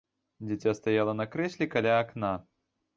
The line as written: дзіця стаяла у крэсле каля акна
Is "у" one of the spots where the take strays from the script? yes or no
yes